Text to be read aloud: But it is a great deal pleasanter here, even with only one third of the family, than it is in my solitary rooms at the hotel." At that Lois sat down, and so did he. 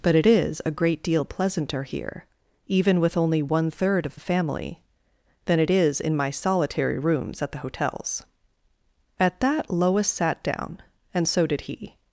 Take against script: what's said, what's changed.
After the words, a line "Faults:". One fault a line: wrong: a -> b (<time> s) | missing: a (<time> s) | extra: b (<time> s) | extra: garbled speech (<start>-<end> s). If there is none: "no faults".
But it is a great deal pleasanter here, even with only one third of the family, than it is in my solitary rooms at the hotels." At that Lois sat down, and so did he.
Faults:
wrong: hotel -> hotels (7.6 s)